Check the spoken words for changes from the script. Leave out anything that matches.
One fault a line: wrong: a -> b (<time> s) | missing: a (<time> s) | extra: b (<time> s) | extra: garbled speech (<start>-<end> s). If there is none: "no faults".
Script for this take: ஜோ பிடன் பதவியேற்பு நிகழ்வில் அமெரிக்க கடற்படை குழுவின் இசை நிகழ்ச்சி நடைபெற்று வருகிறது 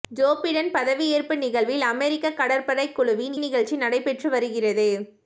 missing: இசை (3.4 s)